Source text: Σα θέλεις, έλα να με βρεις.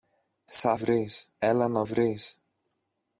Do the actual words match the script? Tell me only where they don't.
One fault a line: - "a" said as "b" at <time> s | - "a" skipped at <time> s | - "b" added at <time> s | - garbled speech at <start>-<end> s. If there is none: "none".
- "θέλεις" said as "βρεις" at 0.7 s
- "με" skipped at 1.8 s